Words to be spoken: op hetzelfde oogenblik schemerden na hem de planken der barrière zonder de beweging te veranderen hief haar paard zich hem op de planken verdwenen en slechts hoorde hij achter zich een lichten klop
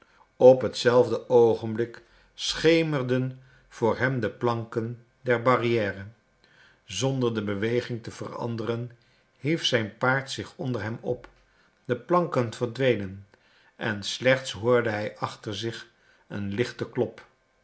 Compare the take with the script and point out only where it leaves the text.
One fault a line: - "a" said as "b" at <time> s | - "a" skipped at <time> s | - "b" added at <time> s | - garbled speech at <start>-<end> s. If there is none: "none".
- "na" said as "voor" at 3.7 s
- "haar" said as "zijn" at 9.7 s
- "onder" added at 10.6 s